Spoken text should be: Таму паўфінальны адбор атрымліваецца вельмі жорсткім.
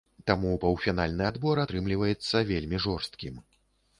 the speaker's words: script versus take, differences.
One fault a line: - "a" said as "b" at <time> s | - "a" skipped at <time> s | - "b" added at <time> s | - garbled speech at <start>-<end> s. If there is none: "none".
none